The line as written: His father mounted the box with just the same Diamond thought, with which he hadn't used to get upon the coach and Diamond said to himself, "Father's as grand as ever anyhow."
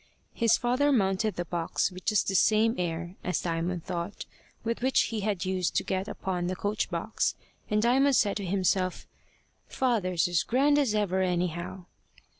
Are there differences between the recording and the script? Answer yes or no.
yes